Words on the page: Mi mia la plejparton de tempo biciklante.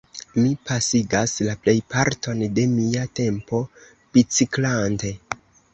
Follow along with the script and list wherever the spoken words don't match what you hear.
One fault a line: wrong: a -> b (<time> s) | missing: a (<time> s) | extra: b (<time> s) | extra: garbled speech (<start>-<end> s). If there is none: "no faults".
wrong: mia -> pasigas (0.7 s)
extra: mia (2.8 s)